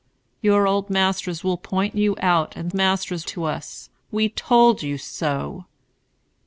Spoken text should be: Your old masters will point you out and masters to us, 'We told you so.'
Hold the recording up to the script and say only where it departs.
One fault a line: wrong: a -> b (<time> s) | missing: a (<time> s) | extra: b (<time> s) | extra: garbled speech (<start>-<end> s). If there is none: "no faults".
no faults